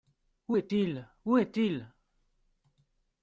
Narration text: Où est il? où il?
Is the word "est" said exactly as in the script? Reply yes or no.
yes